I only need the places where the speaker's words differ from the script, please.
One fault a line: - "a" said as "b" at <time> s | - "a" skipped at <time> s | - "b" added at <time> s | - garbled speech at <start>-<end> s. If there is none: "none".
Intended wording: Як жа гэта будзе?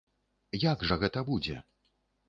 none